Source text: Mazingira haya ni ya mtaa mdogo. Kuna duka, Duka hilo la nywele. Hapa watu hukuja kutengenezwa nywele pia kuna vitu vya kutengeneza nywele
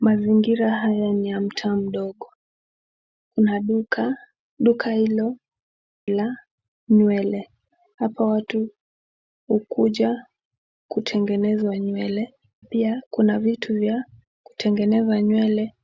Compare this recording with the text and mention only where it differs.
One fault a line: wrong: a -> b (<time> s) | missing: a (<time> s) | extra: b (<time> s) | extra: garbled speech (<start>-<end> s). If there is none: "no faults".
no faults